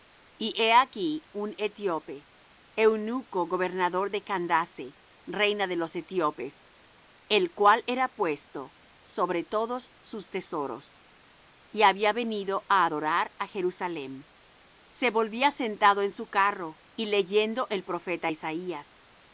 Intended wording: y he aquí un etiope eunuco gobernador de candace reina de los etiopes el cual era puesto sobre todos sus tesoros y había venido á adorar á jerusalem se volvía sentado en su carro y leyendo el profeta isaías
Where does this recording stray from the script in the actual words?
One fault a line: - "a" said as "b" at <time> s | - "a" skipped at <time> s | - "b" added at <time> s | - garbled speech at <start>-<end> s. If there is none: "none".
none